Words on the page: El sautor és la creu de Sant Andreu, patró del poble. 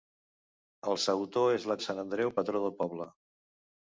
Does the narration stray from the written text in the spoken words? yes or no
yes